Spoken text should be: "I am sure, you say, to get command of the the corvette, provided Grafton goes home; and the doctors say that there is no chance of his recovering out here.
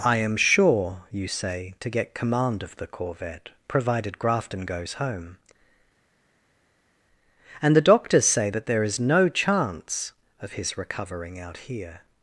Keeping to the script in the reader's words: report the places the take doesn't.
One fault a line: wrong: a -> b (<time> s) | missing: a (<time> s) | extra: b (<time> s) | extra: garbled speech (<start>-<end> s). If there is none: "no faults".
missing: the (2.9 s)